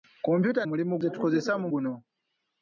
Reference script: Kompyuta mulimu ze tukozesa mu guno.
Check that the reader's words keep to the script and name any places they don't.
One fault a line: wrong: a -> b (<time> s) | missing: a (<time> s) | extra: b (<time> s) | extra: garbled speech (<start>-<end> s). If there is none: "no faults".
no faults